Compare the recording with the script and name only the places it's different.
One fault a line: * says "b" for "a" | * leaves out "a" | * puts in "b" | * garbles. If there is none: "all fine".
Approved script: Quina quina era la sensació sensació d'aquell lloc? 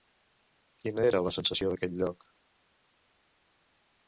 * leaves out "quina"
* leaves out "sensació"